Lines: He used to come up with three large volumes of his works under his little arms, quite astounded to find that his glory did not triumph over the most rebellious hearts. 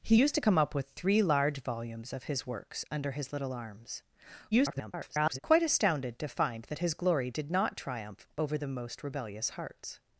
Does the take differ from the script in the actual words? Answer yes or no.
yes